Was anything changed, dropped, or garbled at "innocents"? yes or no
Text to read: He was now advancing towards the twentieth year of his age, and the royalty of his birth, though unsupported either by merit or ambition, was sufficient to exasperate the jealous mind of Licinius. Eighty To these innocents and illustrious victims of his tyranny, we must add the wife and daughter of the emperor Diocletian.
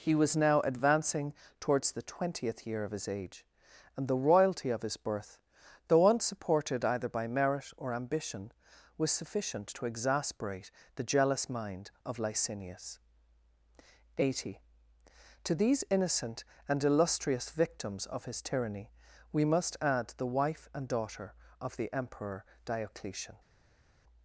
yes